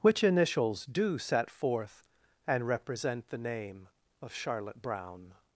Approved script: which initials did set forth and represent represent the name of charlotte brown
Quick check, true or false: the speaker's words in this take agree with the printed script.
false